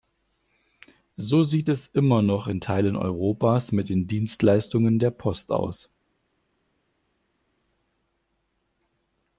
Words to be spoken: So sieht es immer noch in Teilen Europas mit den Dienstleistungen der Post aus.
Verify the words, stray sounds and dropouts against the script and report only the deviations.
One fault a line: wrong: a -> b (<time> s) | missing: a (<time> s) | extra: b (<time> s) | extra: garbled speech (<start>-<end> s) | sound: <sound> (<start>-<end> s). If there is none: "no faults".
no faults